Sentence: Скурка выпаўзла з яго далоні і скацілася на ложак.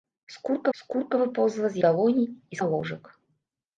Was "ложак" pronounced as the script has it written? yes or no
yes